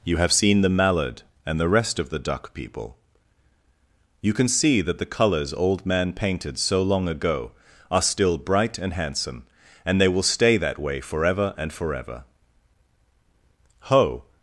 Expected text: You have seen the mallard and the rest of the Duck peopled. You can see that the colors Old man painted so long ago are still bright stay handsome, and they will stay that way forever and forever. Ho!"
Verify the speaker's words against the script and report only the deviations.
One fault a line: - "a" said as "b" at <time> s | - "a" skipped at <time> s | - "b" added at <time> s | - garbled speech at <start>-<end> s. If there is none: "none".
- "peopled" said as "people" at 2.5 s
- "stay" said as "and" at 8.8 s